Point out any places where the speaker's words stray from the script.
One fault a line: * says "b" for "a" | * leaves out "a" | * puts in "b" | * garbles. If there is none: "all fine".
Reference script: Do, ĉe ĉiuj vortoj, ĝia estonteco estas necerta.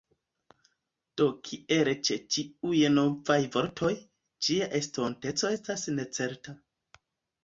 * puts in "kiel"
* puts in "novaj"